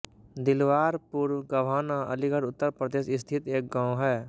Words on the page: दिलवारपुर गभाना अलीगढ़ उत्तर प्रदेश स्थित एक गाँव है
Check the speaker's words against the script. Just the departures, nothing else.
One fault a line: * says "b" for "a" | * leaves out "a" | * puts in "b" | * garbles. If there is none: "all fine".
all fine